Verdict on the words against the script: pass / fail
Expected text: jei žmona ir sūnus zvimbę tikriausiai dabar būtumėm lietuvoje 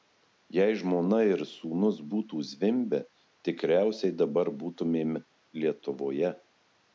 fail